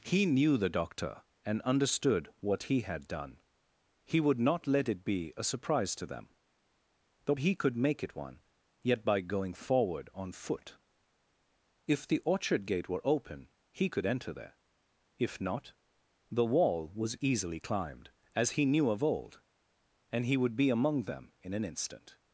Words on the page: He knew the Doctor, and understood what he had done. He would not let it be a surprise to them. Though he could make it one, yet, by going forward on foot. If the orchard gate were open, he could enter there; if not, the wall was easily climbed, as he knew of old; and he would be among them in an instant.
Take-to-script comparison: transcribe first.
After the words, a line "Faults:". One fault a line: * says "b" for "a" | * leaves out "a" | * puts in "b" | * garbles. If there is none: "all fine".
He knew the Doctor, and understood what he had done. He would not let it be a surprise to them. Though he could make it one, yet, by going forward on foot. If the orchard gate were open, he could enter there; if not, the wall was easily climbed, as he knew of old; and he would be among them in an instant.
Faults:
all fine